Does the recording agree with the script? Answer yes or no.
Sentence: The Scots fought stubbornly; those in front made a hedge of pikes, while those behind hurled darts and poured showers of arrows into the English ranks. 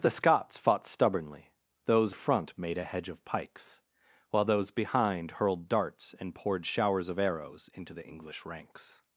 no